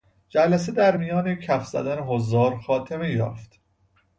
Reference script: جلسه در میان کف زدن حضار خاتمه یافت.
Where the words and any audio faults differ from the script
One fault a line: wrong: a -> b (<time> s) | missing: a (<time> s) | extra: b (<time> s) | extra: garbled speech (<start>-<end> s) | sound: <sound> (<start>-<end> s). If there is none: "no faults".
no faults